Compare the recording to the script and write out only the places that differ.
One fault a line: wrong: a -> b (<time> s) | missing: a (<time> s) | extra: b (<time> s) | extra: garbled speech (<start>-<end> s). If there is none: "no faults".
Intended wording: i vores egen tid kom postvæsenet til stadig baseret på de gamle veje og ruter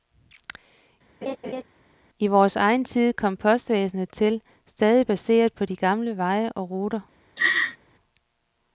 no faults